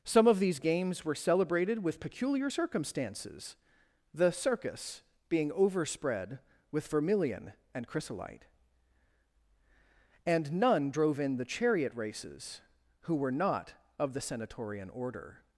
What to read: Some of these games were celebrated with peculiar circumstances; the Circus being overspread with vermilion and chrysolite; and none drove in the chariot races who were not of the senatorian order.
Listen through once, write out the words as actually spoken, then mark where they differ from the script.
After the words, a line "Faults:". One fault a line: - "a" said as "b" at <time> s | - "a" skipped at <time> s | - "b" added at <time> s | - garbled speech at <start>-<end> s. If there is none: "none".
Some of these games were celebrated with peculiar circumstances; the Circus being overspread with vermilion and chrysolite; and none drove in the chariot races who were not of the senatorian order.
Faults:
none